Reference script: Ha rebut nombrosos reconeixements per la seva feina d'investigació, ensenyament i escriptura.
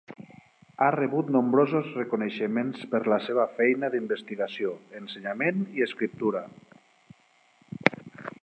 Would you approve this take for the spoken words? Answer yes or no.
yes